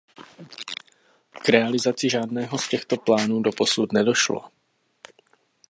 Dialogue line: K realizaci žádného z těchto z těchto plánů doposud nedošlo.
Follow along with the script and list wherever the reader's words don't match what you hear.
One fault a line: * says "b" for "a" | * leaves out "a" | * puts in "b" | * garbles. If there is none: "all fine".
* leaves out "z těchto"